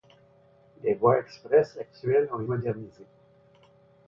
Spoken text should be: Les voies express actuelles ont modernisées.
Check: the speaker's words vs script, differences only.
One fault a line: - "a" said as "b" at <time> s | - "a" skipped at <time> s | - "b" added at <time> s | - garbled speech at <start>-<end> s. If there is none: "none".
none